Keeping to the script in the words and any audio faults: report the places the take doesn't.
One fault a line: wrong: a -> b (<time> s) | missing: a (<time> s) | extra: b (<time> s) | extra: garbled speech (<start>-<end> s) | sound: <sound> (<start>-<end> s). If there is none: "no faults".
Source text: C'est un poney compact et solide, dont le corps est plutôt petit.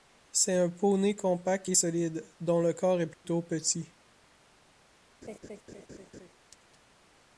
sound: dropout (3.1-3.2 s)
sound: laugh (5.2-6.3 s)